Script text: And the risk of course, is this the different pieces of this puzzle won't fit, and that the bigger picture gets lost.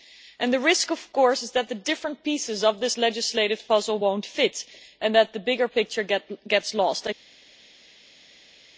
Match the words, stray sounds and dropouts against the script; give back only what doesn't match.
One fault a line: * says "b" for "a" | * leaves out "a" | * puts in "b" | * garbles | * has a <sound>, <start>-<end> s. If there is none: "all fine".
* says "that" for "this"
* puts in "legislative"